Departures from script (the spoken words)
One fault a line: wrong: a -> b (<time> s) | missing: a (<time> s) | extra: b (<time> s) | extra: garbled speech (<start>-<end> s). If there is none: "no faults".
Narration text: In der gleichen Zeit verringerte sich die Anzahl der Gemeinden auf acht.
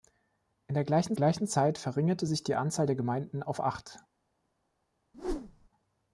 extra: gleichen (1.1 s)